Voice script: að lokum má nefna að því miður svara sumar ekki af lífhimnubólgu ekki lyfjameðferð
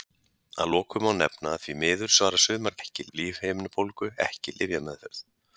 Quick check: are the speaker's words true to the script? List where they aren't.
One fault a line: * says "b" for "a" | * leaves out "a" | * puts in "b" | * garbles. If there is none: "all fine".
all fine